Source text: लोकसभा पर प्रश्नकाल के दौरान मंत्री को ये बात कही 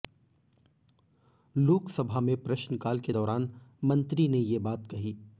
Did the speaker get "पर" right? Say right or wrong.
wrong